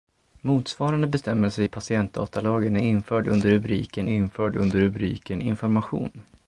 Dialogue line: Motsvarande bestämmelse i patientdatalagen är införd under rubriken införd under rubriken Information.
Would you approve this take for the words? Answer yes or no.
yes